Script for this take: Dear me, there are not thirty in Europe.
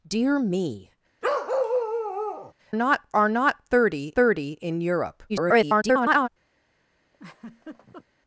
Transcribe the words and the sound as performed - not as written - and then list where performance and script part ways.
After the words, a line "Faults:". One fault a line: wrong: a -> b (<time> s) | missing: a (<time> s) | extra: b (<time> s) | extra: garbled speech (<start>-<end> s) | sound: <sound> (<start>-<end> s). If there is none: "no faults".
Dear me, not are not thirty thirty in Europe. [garbled]
Faults:
sound: bark (1.2-2.5 s)
wrong: there -> not (2.7 s)
extra: thirty (4.2 s)
extra: garbled speech (5.3-6.3 s)
sound: laugh (7.1-8.1 s)